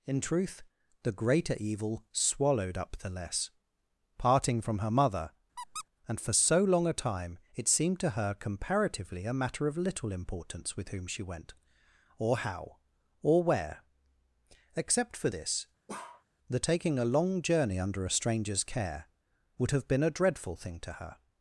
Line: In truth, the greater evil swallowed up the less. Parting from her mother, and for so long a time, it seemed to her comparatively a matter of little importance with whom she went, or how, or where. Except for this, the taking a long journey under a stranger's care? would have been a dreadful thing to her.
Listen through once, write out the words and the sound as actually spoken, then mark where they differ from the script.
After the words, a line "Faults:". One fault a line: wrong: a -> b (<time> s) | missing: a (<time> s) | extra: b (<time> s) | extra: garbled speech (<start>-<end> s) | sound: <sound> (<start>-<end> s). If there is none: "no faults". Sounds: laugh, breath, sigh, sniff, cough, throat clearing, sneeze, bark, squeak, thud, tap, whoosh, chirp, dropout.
In truth, the greater evil swallowed up the less. Parting from her mother, and for so long a time, it seemed to her comparatively a matter of little importance with whom she went, or how, or where. Except for this, the taking a long journey under a stranger's care? would have been a dreadful thing to her.
Faults:
sound: squeak (5.6-5.9 s)
sound: bark (15.9-16.2 s)